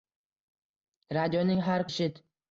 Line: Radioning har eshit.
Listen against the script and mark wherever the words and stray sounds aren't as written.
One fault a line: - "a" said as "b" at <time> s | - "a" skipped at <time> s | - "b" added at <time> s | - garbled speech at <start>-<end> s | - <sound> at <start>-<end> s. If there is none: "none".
none